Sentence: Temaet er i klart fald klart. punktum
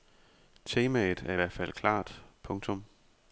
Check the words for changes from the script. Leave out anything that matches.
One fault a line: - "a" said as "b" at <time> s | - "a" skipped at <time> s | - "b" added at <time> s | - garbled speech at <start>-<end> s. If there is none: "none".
- "klart" said as "hvert" at 1.3 s